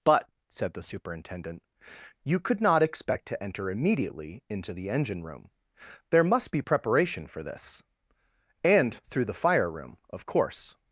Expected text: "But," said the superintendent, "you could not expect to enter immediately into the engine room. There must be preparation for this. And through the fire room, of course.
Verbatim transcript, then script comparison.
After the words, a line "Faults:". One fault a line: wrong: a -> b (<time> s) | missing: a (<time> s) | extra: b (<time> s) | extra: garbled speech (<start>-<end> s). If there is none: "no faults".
"But," said the superintendent, "you could not expect to enter immediately into the engine room. There must be preparation for this. And through the fire room, of course.
Faults:
no faults